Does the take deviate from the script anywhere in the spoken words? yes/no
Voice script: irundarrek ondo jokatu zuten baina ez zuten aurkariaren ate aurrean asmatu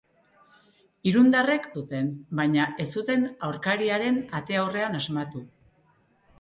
yes